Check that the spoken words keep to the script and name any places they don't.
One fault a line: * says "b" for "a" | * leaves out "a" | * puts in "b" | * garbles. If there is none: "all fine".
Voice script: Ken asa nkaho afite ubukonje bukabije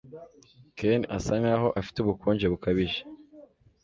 all fine